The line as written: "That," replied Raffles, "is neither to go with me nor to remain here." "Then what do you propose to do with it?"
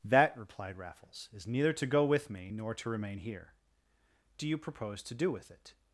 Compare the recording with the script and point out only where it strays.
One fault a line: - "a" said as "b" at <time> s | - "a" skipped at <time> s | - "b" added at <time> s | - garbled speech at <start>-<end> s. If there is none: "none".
- "Then what" skipped at 3.5 s